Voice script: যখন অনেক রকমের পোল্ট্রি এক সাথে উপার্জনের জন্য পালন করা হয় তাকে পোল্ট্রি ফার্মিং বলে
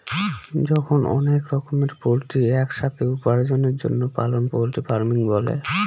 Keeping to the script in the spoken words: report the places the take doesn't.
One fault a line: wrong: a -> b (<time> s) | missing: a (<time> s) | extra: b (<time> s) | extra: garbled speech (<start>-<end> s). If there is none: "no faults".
missing: করা হয় তাকে (4.4 s)